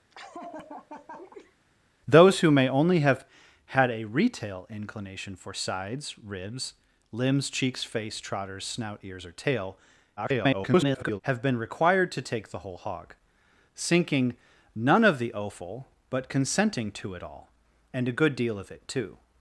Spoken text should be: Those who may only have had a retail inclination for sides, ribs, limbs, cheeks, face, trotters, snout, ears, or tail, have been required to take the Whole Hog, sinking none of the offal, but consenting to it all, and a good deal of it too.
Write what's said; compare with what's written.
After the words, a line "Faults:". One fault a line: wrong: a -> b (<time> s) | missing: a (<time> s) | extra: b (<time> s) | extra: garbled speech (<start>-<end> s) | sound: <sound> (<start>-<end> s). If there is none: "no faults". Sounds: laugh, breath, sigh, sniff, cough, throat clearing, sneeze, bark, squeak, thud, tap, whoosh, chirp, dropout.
Those who may only have had a retail inclination for sides, ribs, limbs, cheeks, face, trotters, snout, ears, or tail, [garbled] have been required to take the Whole Hog, sinking none of the offal, but consenting to it all, and a good deal of it too.
Faults:
sound: laugh (0.1-1.6 s)
extra: garbled speech (10.2-11.2 s)